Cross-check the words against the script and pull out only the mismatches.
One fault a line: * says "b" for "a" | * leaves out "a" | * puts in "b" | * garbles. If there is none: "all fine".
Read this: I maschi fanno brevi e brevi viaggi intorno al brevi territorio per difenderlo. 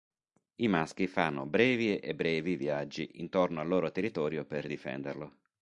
* says "loro" for "brevi"